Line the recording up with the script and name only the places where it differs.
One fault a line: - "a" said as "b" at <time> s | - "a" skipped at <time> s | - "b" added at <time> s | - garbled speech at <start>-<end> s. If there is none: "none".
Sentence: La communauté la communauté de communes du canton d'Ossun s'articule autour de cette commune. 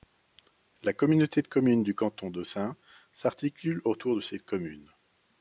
- "la communauté" skipped at 1.4 s